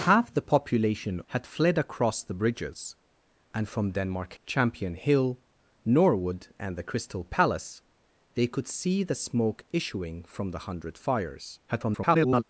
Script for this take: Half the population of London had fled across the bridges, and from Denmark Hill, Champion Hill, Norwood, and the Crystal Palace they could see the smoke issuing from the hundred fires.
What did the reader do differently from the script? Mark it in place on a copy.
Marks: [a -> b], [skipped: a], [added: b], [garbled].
Half the population [skipped: of London] had fled across the bridges, and from Denmark [skipped: Hill,] Champion Hill, Norwood, and the Crystal Palace they could see the smoke issuing from the hundred fires. [garbled]